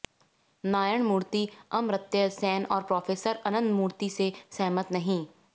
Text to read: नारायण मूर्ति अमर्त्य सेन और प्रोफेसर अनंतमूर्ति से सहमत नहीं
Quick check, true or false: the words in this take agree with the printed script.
true